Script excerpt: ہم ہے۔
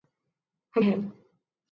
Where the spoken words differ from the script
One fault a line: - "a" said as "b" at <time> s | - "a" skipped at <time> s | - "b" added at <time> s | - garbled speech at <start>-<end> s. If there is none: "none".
none